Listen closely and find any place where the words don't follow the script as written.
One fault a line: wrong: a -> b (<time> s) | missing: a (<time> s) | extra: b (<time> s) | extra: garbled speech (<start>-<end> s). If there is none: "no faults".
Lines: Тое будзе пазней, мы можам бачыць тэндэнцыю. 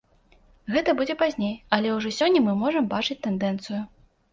wrong: Тое -> Гэта (0.8 s)
extra: але ўжо сёння (1.8 s)